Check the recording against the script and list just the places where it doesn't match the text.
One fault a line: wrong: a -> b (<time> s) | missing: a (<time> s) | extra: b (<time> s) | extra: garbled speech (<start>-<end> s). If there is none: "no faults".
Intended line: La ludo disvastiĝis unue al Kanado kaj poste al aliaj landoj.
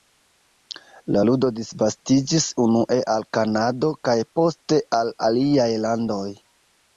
no faults